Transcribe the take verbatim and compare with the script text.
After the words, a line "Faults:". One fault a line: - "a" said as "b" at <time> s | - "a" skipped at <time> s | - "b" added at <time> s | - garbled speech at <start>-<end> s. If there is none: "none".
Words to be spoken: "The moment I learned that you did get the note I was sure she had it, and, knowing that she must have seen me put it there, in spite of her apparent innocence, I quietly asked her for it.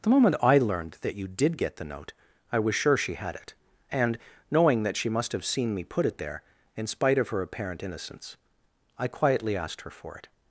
"The moment I learned that you did get the note I was sure she had it, and, knowing that she must have seen me put it there, in spite of her apparent innocence, I quietly asked her for it.
Faults:
none